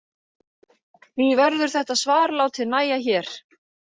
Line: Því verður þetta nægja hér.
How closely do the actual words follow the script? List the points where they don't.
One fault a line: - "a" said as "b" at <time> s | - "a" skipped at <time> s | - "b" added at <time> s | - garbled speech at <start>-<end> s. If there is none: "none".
- "svar látið" added at 2.0 s